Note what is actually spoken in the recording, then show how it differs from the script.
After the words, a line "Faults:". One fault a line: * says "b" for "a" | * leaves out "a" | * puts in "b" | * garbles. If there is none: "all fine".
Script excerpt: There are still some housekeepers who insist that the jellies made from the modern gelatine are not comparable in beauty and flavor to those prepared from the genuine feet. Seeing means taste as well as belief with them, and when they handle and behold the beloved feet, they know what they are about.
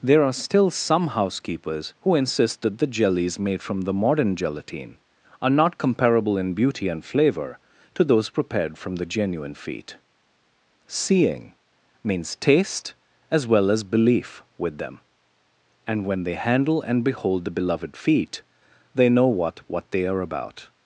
There are still some housekeepers who insist that the jellies made from the modern gelatine are not comparable in beauty and flavor to those prepared from the genuine feet. Seeing means taste as well as belief with them, and when they handle and behold the beloved feet, they know what what they are about.
Faults:
* puts in "what"